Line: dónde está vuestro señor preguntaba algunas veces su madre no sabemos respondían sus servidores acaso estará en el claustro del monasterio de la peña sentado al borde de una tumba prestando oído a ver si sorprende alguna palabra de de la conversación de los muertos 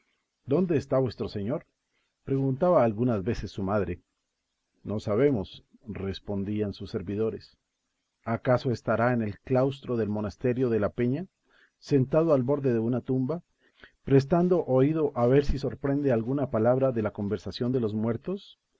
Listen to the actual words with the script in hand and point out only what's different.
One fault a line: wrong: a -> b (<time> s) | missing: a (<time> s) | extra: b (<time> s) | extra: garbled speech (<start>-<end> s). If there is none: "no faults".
missing: de (17.0 s)